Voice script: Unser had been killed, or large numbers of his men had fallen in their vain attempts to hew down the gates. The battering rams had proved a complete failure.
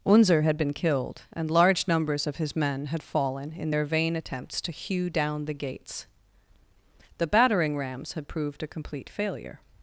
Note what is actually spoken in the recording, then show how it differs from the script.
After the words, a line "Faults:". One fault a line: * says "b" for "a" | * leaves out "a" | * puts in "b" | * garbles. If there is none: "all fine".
Unser had been killed, and large numbers of his men had fallen in their vain attempts to hew down the gates. The battering rams had proved a complete failure.
Faults:
* says "and" for "or"